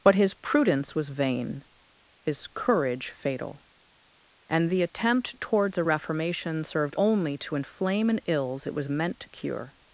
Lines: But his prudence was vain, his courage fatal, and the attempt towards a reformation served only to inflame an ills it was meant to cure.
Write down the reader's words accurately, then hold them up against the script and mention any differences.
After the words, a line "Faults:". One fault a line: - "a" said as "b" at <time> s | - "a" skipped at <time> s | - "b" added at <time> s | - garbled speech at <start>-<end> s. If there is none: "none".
But his prudence was vain, his courage fatal, and the attempt towards a reformation served only to inflame an ills it was meant to cure.
Faults:
none